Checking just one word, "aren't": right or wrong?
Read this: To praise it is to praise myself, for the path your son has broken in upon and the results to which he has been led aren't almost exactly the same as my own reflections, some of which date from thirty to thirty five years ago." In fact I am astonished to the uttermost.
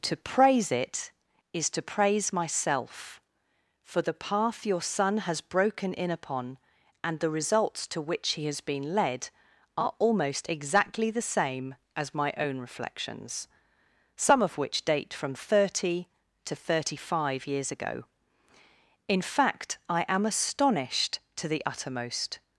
wrong